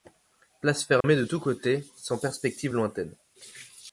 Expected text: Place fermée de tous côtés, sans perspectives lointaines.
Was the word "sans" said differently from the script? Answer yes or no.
no